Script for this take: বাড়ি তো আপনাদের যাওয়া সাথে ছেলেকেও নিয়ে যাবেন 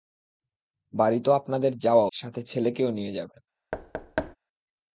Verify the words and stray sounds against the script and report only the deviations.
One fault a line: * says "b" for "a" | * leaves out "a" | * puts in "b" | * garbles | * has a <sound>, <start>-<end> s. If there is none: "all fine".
* has a thud, 3.7-4.4 s